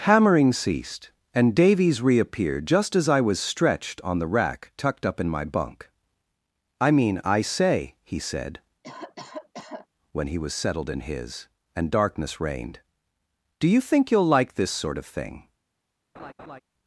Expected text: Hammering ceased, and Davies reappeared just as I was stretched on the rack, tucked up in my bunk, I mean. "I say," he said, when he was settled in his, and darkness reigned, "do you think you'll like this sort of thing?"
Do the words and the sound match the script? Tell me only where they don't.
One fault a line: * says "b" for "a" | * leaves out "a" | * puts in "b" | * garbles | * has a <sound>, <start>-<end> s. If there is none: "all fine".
* has a cough, 8.8-9.9 s
* has a laugh, 16.1-16.6 s